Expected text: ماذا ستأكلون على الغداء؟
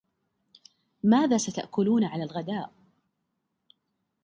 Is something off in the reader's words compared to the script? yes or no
no